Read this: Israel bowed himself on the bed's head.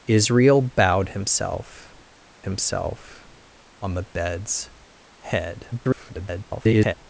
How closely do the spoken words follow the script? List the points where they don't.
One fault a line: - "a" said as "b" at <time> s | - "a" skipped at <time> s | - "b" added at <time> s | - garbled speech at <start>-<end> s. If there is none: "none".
- "himself" added at 2.4 s
- garbled speech at 5.7-6.9 s